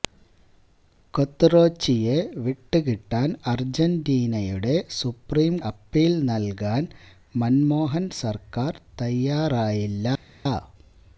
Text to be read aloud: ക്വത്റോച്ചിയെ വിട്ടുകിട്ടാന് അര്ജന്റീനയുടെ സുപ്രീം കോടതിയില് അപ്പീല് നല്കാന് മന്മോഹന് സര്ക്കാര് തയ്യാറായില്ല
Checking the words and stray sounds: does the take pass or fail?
fail